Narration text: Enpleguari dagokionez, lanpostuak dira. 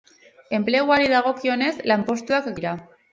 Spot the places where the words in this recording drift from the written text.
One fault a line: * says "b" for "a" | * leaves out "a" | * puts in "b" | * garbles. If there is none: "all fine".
all fine